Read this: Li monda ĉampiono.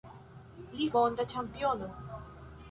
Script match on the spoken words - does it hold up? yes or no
yes